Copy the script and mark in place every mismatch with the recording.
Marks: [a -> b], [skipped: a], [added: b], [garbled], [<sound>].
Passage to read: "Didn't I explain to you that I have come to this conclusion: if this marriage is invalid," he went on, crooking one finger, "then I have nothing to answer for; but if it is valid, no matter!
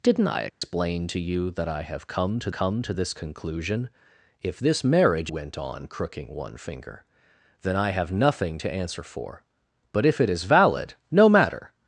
"Didn't I explain [dropout] to you that I have come to [added: come to] this conclusion: if this marriage [skipped: is invalid," he] went on, crooking one finger, "then I have nothing to answer for; but if it is valid, no matter!